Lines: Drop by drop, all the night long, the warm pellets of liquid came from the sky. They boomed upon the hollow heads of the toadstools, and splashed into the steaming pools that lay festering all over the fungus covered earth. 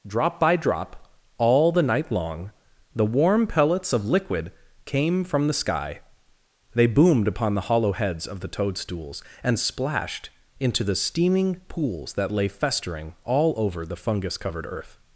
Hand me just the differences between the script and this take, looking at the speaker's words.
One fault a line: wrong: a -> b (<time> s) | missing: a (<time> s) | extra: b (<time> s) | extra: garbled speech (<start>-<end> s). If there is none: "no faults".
no faults